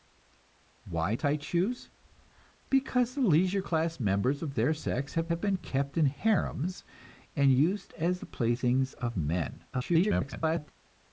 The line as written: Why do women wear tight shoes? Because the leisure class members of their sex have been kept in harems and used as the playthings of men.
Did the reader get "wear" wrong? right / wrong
wrong